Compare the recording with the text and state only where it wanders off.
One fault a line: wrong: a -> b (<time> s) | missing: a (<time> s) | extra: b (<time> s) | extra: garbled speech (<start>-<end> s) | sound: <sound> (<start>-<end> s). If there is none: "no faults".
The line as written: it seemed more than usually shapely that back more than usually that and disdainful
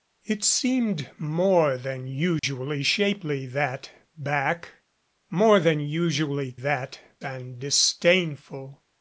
sound: dropout (2.4-2.4 s)